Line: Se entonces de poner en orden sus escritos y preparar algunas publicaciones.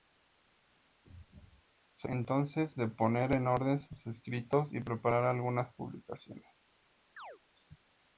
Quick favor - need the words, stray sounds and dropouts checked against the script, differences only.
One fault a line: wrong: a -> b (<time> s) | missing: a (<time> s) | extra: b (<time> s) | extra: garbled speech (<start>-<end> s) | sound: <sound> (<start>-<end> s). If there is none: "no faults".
sound: chirp (7.2-7.4 s)